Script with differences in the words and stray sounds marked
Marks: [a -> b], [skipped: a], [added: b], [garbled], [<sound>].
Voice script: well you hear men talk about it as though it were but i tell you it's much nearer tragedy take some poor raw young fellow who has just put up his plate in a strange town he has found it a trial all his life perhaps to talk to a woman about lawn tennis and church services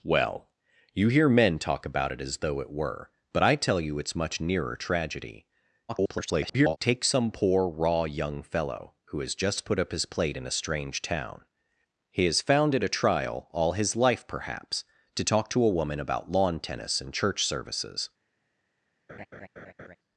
well you hear men talk about it as though it were but i tell you it's much nearer tragedy [garbled] take some poor raw young fellow who has just put up his plate in a strange town he has found it a trial all his life perhaps to talk to a woman about lawn tennis and church services [laugh]